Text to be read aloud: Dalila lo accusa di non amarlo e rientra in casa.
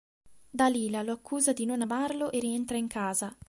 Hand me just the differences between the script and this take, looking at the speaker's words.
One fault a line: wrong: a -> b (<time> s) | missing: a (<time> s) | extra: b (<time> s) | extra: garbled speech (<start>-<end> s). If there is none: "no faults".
no faults